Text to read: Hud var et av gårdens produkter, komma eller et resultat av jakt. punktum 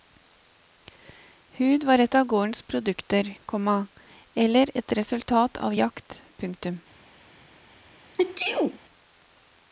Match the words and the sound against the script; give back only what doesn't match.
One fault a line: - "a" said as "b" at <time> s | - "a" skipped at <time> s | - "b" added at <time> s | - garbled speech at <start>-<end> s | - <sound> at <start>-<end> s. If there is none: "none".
- sneeze at 8.1-8.8 s